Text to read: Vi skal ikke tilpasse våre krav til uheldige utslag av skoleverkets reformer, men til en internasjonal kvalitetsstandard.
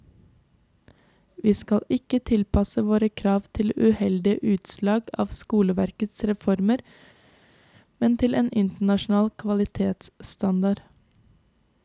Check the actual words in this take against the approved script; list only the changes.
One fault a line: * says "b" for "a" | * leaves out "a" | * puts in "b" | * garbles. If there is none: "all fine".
all fine